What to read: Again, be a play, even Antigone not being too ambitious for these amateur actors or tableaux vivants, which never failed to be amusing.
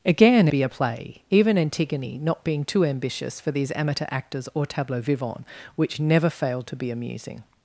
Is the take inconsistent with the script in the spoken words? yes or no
no